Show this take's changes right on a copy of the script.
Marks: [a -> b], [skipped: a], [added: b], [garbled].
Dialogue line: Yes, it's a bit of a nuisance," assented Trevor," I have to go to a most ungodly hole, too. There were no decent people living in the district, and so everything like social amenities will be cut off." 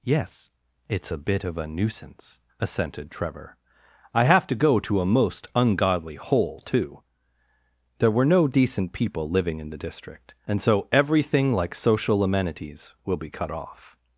Yes, it's a bit of a nuisance," assented Trevor," I have to go to a most ungodly hole, too. There were no decent people living in the district, and so everything like social amenities will be cut off."